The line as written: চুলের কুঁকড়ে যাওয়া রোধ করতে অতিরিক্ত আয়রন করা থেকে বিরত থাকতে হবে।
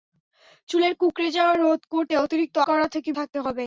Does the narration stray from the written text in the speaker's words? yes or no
yes